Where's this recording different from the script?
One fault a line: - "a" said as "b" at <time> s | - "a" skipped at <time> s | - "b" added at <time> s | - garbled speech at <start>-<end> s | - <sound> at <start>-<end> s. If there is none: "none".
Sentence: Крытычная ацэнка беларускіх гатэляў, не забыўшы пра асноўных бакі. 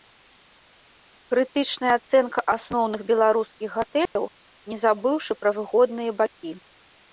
- "асноўных" added at 2.5 s
- dropout at 4.1-4.2 s
- "асноўных" said as "выгодныя" at 5.6 s